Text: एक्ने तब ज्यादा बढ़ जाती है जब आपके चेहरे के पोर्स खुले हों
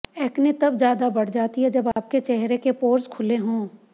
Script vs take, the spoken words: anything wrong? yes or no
no